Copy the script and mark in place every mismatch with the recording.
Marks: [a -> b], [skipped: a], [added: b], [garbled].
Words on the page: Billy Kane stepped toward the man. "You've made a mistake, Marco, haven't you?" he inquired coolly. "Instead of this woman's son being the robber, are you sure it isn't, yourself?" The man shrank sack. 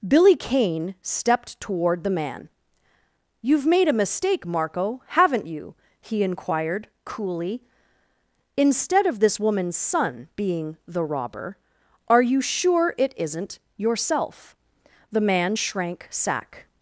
Billy Kane stepped toward the man. "You've made a mistake, Marco, haven't you?" he inquired coolly. "Instead of this woman's son being the robber, are you sure it isn't, yourself?" The man shrank sack.